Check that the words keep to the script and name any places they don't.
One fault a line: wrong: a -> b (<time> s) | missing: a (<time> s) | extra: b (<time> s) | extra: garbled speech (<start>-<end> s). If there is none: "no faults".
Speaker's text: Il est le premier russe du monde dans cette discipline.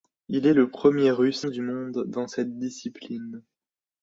no faults